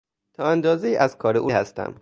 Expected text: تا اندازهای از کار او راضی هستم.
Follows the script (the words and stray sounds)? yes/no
no